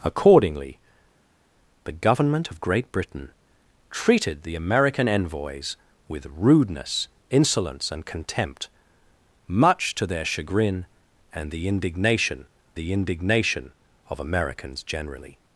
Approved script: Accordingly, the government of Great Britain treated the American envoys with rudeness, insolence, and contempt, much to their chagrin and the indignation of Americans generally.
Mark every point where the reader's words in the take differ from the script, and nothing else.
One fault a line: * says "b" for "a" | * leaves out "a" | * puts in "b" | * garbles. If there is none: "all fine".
* puts in "the indignation"